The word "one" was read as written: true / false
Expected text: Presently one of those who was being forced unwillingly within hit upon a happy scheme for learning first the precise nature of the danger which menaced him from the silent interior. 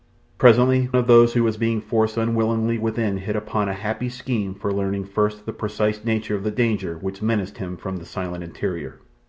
false